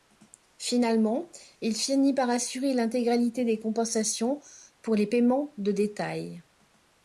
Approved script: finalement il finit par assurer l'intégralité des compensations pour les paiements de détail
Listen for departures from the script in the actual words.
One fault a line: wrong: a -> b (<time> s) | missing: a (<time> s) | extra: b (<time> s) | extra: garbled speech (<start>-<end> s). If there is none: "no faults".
no faults